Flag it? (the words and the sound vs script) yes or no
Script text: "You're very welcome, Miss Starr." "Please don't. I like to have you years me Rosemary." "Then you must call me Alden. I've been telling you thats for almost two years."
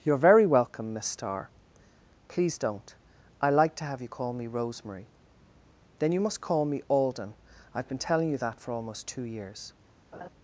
yes